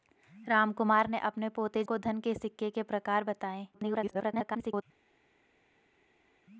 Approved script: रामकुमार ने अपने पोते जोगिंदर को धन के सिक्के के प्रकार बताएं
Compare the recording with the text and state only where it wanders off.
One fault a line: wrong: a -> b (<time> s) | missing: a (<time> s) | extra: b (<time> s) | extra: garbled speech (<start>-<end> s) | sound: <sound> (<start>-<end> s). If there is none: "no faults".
missing: जोगिंदर (1.8 s)
extra: garbled speech (3.7-4.8 s)